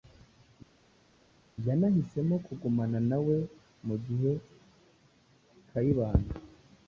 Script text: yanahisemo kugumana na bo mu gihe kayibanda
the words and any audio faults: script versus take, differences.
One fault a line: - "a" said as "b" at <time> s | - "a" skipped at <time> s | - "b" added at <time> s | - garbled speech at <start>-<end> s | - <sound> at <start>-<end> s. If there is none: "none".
- "bo" said as "we" at 3.3 s